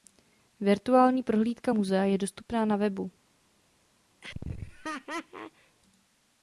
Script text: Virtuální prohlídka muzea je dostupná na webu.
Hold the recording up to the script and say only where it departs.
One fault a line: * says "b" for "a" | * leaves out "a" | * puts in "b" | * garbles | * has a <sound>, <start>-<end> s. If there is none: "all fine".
* has a laugh, 4.2-5.8 s